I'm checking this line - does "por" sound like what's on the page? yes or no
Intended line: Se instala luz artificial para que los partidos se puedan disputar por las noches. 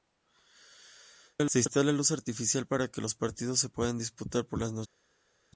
yes